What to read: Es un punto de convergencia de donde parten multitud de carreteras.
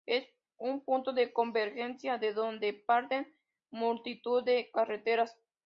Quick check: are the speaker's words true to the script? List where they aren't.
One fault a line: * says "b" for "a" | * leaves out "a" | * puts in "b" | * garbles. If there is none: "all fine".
all fine